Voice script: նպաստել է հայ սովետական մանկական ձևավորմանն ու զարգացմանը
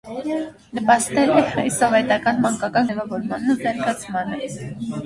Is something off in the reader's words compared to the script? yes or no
no